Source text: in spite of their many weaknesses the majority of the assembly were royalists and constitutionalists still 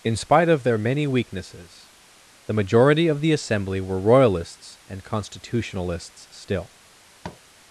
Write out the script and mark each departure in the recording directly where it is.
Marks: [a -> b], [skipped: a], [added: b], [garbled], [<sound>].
in spite of their many weaknesses the majority of the assembly were royalists and constitutionalists still [tap]